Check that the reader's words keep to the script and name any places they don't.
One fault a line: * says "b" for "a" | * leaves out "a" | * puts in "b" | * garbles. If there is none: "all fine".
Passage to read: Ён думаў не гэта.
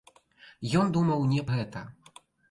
all fine